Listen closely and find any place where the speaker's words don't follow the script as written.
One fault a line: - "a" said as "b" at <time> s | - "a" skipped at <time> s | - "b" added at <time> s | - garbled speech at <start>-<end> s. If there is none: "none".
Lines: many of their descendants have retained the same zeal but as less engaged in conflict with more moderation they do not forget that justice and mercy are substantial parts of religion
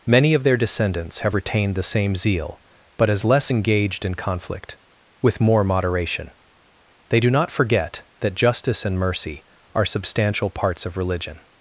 none